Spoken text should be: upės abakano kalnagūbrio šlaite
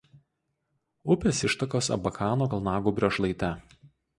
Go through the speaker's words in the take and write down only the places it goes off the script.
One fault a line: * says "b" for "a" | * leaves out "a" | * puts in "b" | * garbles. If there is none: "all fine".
* puts in "ištakos"